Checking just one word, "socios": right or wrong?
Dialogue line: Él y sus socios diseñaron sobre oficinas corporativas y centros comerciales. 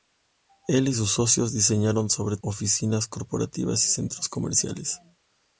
right